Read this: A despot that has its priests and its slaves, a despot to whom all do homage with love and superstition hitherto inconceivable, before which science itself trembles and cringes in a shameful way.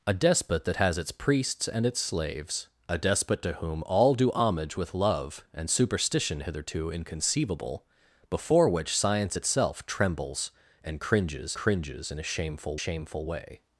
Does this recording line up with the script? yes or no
no